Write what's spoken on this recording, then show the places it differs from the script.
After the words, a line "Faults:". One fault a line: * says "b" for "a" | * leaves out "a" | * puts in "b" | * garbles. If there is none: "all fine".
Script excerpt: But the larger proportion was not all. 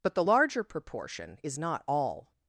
But the larger proportion is not all.
Faults:
* says "is" for "was"